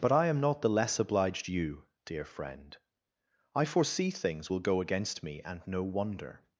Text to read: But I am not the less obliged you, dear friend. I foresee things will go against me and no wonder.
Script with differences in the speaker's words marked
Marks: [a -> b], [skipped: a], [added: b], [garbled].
But I am not the less obliged you, dear friend. I foresee things will go against me and no wonder.